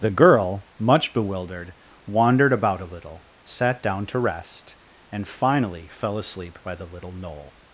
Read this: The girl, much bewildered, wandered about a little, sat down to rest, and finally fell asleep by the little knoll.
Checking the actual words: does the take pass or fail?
pass